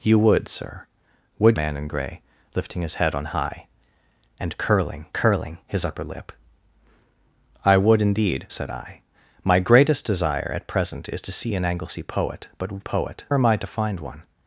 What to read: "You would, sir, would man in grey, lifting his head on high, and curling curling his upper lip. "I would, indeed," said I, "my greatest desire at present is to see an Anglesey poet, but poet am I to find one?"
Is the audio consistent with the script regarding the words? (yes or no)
yes